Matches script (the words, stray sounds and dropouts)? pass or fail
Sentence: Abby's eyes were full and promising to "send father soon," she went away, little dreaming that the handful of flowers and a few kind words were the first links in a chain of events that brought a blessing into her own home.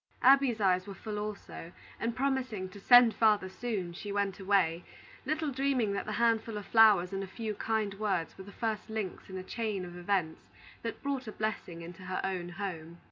fail